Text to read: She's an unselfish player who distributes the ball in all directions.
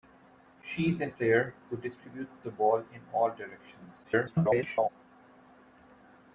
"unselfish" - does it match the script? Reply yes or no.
no